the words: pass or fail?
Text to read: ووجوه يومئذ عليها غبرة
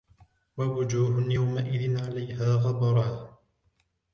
pass